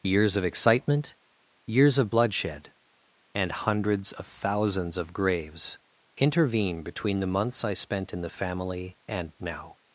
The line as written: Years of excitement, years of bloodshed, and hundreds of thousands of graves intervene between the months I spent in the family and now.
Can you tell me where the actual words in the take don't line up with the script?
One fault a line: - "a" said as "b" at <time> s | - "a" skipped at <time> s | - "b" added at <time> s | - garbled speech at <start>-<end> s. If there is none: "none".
none